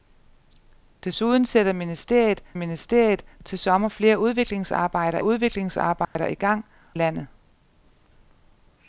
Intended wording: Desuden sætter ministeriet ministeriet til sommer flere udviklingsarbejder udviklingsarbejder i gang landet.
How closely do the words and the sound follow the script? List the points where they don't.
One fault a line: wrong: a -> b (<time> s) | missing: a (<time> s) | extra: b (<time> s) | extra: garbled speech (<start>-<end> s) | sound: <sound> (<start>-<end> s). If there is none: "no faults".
sound: dropout (6.0-6.2 s)